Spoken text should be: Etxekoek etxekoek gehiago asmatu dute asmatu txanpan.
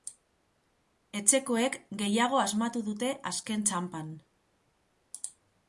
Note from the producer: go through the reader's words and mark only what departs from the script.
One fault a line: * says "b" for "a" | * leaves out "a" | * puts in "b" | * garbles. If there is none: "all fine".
* leaves out "etxekoek"
* says "azken" for "asmatu"